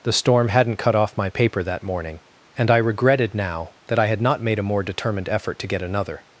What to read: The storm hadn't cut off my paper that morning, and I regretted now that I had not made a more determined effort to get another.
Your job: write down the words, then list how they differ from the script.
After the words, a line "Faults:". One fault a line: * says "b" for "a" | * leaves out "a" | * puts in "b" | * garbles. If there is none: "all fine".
The storm hadn't cut off my paper that morning, and I regretted now that I had not made a more determined effort to get another.
Faults:
all fine